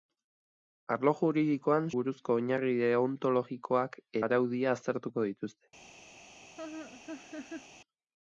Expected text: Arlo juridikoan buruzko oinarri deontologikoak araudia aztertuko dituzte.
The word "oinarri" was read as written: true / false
true